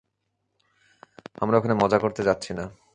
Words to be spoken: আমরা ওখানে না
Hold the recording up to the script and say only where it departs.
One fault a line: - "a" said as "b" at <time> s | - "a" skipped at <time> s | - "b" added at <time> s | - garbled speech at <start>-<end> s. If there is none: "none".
- "মজা করতে যাচ্ছি" added at 1.8 s